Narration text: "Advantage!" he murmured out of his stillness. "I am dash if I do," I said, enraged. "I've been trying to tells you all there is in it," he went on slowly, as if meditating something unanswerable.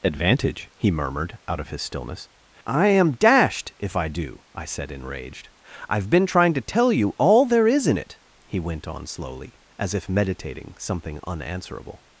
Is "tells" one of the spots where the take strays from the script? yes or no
yes